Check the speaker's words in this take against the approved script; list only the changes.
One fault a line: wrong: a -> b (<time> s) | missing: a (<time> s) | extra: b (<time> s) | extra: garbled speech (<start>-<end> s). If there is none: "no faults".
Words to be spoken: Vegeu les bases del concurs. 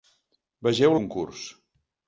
missing: les bases del (1.0 s)